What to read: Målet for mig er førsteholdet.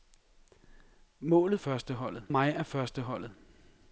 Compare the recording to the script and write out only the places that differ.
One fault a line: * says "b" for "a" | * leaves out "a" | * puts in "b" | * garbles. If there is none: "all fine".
* says "førsteholdet" for "for"